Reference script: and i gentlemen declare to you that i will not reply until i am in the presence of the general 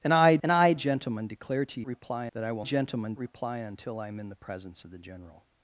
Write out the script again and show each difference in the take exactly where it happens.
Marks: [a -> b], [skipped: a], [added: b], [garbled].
and i [added: and i] gentlemen declare to [you -> reply] that i will [not -> gentlemen] reply until i am in the presence of the general